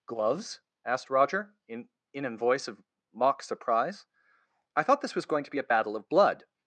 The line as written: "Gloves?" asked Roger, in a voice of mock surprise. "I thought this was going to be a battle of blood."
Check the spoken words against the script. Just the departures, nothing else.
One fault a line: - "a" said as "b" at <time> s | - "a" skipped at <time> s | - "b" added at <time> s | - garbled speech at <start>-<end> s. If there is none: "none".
- "in" added at 2.1 s